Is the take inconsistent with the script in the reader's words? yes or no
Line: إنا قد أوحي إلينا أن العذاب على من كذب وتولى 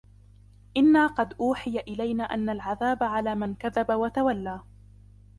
no